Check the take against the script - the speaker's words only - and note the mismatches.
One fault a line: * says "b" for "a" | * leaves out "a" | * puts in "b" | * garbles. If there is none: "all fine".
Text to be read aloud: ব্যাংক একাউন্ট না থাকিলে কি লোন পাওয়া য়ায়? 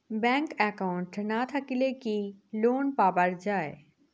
all fine